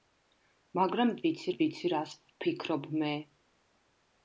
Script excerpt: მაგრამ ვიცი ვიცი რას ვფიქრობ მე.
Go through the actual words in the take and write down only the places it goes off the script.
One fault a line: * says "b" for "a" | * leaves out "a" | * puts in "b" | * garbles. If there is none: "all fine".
all fine